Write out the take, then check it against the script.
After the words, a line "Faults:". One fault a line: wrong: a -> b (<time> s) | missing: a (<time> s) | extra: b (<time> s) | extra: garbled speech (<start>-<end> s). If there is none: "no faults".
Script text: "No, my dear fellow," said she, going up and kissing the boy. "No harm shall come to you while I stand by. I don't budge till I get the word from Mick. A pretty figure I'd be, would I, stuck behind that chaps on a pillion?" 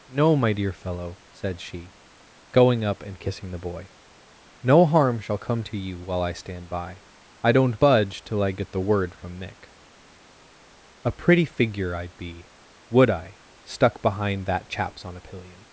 "No, my dear fellow," said she, going up and kissing the boy. "No harm shall come to you while I stand by. I don't budge till I get the word from Mick. A pretty figure I'd be, would I, stuck behind that chaps on a pillion?"
Faults:
no faults